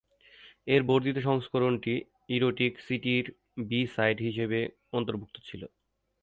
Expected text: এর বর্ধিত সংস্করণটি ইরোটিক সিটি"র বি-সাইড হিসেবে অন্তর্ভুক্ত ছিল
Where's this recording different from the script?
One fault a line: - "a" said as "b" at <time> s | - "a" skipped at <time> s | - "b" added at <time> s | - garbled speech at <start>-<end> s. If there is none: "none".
none